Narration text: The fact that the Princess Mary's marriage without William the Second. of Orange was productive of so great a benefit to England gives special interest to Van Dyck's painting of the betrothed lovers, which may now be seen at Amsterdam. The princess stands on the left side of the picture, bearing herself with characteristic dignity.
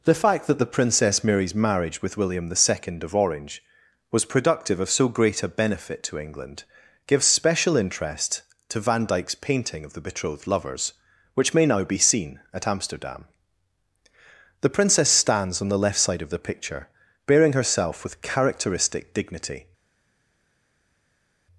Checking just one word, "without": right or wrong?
wrong